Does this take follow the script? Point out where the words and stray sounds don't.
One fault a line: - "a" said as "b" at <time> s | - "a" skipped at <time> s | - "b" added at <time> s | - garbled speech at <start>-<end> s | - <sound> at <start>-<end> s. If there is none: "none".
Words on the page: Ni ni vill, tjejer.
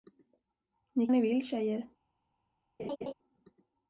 - laugh at 2.8-3.1 s